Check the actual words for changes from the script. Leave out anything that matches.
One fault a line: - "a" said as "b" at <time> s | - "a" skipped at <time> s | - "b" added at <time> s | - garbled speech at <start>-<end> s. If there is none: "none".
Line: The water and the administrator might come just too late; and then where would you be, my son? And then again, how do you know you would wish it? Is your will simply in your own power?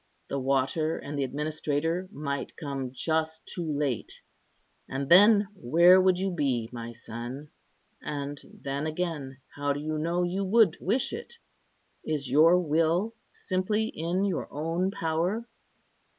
none